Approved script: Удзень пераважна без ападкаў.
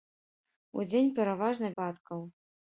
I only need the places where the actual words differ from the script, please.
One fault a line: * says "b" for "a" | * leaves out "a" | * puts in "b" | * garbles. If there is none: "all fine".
* leaves out "без"